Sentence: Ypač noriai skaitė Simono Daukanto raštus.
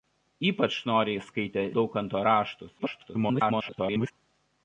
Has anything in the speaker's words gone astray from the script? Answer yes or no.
yes